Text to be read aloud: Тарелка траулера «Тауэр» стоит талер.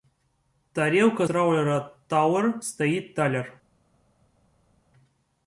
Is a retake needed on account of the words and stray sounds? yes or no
no